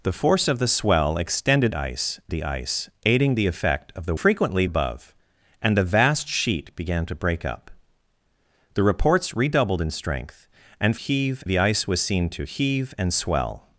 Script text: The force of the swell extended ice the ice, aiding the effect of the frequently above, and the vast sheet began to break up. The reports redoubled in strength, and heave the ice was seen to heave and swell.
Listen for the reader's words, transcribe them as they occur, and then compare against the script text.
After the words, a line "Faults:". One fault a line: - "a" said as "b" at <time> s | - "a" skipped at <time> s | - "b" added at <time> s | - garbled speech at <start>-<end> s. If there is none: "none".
The force of the swell extended ice the ice, aiding the effect of the frequently above, and the vast sheet began to break up. The reports redoubled in strength, and heave the ice was seen to heave and swell.
Faults:
none